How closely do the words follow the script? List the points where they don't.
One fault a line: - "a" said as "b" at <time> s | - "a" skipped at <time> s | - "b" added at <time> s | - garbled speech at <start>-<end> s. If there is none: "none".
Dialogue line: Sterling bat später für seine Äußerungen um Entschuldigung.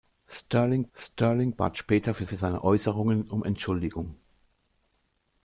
- "sterling" added at 1.0 s
- "für" added at 2.2 s